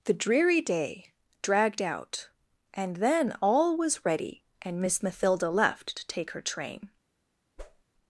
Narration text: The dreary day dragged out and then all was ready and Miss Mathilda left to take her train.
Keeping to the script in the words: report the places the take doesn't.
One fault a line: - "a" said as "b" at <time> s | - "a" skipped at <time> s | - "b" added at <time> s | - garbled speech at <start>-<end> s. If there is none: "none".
none